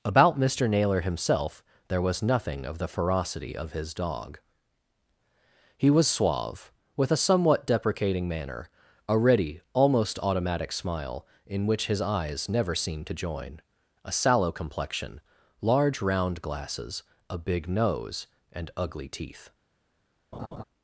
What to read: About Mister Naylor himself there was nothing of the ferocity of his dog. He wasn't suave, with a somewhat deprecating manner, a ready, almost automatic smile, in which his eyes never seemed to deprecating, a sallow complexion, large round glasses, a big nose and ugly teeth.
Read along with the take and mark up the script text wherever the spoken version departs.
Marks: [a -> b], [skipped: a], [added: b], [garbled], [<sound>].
About Mister Naylor himself there was nothing of the ferocity of his dog. He [wasn't -> was] suave, with a somewhat deprecating manner, a ready, almost automatic smile, in which his eyes never seemed to [deprecating, -> join] a sallow complexion, large round glasses, a big nose and ugly teeth. [laugh]